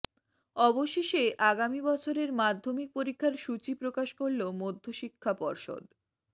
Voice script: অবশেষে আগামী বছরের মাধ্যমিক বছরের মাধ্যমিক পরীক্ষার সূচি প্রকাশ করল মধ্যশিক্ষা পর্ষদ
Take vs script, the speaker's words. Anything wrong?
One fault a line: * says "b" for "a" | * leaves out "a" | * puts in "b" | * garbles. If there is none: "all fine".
* leaves out "বছরের মাধ্যমিক"